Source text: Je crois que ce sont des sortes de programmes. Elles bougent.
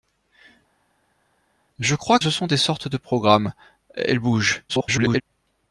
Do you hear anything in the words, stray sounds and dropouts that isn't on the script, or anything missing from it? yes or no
yes